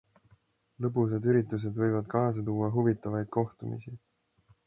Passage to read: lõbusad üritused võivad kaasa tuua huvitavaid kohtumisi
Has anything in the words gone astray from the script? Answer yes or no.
no